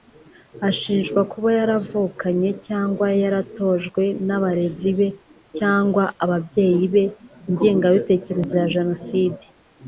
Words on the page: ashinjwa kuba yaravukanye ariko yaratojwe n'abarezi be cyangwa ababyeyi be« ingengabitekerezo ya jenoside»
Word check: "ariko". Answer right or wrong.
wrong